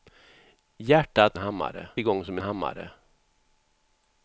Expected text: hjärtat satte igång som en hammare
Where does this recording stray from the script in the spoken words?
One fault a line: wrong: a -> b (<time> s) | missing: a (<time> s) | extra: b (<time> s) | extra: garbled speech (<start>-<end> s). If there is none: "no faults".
wrong: satte -> hammare (1.4 s)
missing: en (2.4 s)